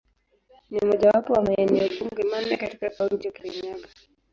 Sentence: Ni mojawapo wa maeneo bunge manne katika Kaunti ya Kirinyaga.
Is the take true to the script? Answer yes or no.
yes